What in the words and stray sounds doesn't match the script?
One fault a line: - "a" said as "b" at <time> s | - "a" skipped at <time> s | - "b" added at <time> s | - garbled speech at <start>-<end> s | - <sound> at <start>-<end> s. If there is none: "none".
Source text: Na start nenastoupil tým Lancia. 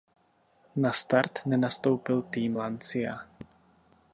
none